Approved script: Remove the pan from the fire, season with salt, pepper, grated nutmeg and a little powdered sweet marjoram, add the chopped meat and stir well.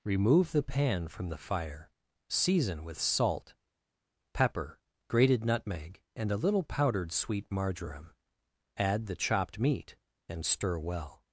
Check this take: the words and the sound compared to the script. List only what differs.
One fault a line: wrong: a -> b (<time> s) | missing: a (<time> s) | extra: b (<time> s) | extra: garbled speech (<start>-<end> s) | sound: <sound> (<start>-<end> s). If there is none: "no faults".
no faults